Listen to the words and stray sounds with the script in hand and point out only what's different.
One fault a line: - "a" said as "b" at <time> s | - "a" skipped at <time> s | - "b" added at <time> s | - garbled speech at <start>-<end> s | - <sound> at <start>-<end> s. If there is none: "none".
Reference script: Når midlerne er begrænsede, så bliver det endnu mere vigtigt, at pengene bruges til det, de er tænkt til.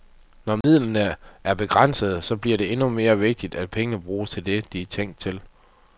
- dropout at 0.6-0.6 s